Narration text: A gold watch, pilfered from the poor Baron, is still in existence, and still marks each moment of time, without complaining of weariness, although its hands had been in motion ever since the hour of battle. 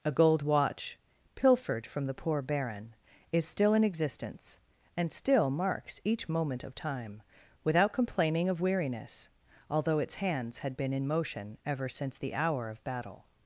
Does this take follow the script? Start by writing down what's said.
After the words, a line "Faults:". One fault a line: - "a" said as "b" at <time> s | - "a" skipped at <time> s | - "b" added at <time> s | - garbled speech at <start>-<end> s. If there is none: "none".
A gold watch, pilfered from the poor Baron, is still in existence, and still marks each moment of time, without complaining of weariness, although its hands had been in motion ever since the hour of battle.
Faults:
none